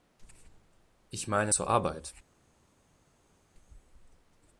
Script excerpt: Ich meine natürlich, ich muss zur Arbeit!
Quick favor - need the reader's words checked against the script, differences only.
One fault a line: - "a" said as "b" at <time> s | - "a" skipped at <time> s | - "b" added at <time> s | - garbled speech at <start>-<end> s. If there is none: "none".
- "natürlich ich muss" skipped at 1.5 s